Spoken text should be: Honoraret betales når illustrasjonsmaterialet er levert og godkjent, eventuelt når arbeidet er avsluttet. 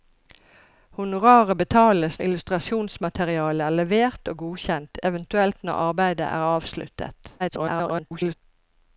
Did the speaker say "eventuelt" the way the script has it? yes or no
yes